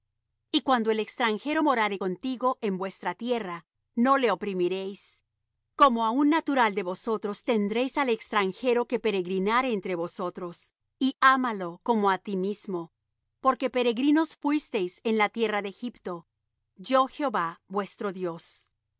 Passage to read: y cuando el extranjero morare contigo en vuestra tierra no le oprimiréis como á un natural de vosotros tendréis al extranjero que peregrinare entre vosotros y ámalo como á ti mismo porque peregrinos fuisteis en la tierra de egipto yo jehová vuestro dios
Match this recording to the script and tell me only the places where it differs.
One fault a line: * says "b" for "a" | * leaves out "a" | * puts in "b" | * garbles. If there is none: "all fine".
all fine